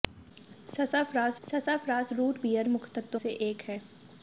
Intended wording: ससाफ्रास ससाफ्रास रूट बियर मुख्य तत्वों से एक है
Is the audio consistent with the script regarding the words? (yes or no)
yes